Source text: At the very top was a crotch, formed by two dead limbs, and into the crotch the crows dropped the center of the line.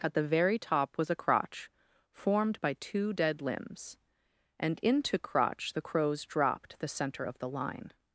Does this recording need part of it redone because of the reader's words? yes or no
yes